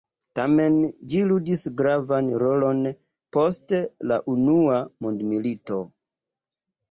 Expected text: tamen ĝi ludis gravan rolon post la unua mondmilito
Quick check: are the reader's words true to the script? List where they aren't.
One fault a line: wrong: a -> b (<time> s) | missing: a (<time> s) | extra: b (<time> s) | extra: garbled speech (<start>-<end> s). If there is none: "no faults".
no faults